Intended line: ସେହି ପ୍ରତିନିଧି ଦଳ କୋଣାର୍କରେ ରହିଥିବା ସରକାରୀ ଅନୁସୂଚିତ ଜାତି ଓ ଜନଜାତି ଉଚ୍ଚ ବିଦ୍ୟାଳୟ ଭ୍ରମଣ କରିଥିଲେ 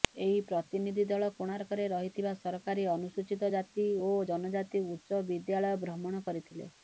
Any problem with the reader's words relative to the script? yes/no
yes